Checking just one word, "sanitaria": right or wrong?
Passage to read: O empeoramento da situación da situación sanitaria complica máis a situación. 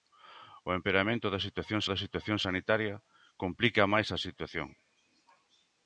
right